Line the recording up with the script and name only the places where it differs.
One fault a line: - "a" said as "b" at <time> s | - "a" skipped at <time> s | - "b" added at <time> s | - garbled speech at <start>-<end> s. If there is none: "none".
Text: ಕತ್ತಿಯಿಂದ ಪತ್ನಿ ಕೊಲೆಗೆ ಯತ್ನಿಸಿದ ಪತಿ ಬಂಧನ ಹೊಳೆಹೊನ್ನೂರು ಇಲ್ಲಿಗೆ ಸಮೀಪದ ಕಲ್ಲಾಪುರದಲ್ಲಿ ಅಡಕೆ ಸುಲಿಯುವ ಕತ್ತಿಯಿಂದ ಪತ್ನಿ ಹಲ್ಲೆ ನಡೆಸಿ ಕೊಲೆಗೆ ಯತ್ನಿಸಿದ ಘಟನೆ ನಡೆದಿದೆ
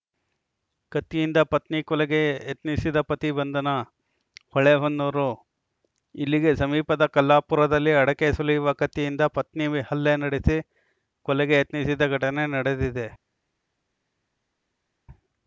none